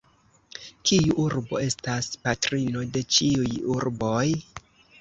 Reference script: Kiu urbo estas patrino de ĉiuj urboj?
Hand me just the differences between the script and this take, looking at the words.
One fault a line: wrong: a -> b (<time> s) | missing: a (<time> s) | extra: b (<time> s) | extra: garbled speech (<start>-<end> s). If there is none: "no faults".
no faults